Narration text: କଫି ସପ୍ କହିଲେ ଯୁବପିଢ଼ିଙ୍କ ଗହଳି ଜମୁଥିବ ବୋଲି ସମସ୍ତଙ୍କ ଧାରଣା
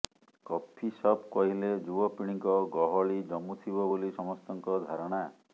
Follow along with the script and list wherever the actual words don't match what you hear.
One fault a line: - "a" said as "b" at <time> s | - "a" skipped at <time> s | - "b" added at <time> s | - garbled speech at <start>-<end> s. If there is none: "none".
none